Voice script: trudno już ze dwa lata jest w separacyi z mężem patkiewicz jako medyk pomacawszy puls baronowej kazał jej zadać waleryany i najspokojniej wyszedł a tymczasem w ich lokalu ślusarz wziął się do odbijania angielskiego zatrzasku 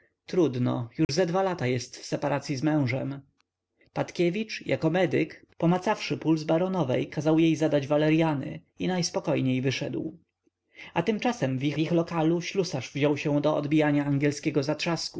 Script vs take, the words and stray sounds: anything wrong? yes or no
yes